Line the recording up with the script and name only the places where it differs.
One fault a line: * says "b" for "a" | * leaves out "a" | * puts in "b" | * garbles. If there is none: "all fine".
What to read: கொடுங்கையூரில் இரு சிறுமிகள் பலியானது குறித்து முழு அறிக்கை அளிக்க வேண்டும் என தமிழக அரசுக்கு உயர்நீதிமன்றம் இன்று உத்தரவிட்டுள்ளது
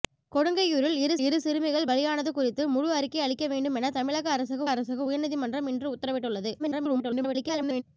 * puts in "இரு"
* puts in "அரசுக்கு"
* garbles